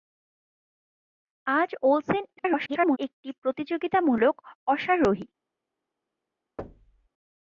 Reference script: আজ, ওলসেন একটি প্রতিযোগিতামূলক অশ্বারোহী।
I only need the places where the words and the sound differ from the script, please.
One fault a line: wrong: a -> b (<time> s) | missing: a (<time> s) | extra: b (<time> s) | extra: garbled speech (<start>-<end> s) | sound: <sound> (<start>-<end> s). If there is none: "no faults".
extra: garbled speech (2.4-3.0 s)
sound: thud (6.6-7.1 s)